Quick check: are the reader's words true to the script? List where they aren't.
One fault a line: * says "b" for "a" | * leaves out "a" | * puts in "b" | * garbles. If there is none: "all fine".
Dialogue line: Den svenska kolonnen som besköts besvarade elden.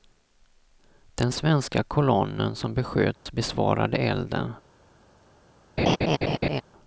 all fine